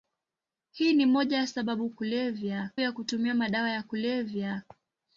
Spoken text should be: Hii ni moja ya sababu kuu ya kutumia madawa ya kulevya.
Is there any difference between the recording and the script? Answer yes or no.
yes